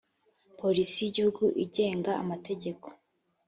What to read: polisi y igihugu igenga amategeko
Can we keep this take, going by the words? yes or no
yes